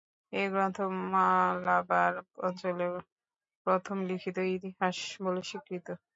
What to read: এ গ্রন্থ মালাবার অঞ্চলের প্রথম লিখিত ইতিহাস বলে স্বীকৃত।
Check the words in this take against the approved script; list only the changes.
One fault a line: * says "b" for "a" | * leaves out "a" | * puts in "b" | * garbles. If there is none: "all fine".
all fine